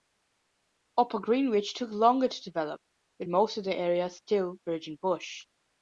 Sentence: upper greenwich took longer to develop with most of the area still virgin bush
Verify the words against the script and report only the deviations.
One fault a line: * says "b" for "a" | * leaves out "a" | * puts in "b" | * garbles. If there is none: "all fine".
all fine